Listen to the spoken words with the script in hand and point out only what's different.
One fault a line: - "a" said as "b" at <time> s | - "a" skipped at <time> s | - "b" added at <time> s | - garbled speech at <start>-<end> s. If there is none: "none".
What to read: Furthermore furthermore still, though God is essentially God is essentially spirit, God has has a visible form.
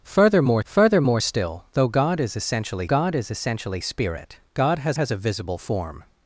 none